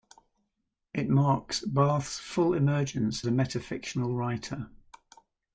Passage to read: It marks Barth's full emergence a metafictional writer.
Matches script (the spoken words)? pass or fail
pass